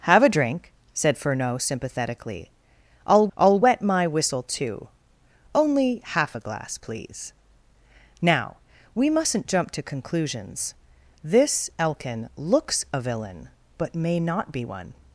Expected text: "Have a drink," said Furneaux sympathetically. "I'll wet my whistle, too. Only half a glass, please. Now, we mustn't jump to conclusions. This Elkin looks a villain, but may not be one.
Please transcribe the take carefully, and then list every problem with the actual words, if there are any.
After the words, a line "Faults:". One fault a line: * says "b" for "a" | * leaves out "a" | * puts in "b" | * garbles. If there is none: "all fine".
"Have a drink," said Furneaux sympathetically. "I'll I'll wet my whistle, too. Only half a glass, please. Now, we mustn't jump to conclusions. This Elkin looks a villain, but may not be one.
Faults:
* puts in "I'll"